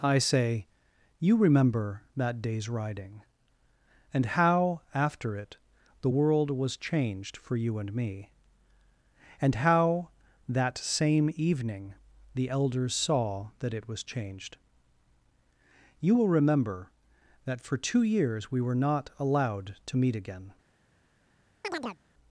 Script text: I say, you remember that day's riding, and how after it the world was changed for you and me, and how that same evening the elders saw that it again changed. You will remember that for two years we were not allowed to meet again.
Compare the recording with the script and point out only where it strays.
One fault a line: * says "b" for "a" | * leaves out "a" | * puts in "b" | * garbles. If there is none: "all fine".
* says "was" for "again"